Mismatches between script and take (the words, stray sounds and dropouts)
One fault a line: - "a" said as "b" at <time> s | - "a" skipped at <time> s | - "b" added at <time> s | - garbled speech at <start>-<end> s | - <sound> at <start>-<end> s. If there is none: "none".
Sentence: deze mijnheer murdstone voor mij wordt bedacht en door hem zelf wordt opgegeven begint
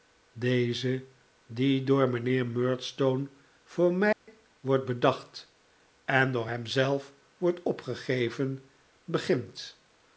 - "die door" added at 1.5 s
- dropout at 4.1-4.3 s